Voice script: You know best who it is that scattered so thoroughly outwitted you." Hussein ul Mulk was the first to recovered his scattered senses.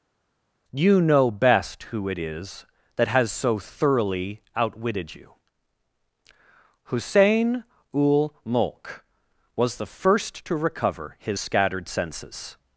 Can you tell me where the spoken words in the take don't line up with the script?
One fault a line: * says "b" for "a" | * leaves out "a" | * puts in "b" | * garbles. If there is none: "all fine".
* says "has" for "scattered"
* says "recover" for "recovered"